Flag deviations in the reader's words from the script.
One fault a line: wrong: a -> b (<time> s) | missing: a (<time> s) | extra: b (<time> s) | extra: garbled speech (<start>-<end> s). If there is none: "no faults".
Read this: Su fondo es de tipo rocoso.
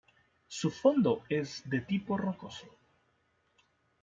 no faults